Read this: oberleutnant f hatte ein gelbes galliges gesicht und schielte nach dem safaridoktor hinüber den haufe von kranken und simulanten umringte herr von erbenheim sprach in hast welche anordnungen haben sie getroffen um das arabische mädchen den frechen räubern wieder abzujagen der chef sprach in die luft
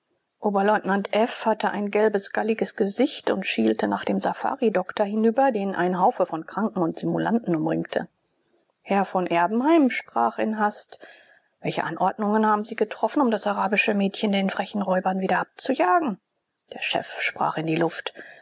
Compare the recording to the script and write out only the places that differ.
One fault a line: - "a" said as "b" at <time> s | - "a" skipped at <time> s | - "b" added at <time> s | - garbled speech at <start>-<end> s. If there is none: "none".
- "ein" added at 5.7 s